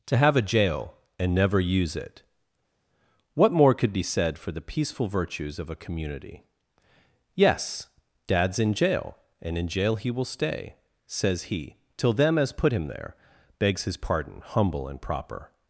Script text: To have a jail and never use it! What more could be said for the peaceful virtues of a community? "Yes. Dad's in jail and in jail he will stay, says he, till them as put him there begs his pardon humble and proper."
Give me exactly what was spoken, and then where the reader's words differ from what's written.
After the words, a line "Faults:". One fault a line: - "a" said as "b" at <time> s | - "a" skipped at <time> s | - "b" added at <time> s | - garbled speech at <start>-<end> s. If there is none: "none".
To have a jail and never use it! What more could be said for the peaceful virtues of a community? "Yes. Dad's in jail and in jail he will stay, says he, till them as put him there begs his pardon humble and proper."
Faults:
none